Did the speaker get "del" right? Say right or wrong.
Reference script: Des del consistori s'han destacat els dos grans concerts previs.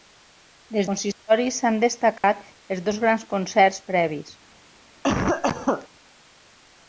wrong